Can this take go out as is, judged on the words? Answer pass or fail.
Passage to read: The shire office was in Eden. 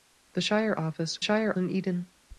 fail